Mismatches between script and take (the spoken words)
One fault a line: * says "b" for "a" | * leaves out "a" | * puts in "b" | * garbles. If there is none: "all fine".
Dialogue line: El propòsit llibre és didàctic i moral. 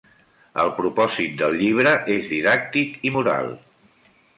* puts in "del"